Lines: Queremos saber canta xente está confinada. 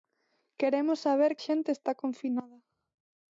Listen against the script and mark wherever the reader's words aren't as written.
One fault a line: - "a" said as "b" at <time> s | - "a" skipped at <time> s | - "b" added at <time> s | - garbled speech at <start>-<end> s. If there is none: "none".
- "canta" skipped at 1.3 s